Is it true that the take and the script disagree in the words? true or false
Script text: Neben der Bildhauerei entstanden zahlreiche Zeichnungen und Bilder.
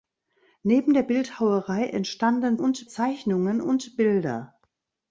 true